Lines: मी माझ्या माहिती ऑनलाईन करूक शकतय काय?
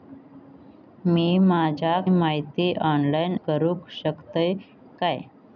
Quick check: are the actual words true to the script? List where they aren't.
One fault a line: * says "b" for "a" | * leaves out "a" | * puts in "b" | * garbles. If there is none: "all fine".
all fine